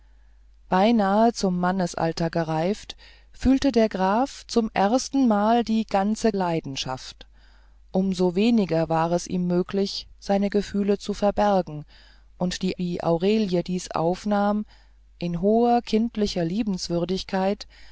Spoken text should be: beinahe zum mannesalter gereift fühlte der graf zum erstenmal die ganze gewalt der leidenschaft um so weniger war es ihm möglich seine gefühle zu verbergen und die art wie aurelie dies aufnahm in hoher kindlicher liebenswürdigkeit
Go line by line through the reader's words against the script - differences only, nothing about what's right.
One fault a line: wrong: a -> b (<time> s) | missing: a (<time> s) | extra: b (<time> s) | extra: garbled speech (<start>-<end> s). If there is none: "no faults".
missing: gewalt der (6.3 s)
missing: art (12.8 s)